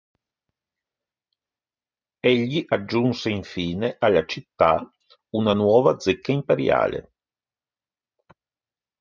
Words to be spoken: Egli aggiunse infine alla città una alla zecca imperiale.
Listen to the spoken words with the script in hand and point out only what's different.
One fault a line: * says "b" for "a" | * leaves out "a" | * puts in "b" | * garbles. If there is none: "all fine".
* says "nuova" for "alla"